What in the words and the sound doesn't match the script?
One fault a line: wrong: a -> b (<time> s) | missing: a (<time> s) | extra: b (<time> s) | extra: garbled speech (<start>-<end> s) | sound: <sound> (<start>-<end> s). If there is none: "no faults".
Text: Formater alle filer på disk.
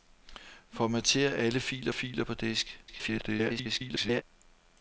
extra: filer (1.9 s)
extra: garbled speech (2.9-4.2 s)